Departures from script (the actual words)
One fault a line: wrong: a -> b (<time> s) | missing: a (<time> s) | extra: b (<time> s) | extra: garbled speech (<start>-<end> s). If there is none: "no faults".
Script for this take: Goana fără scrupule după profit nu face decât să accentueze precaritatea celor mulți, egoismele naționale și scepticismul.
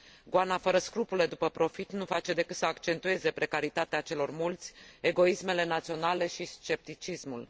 no faults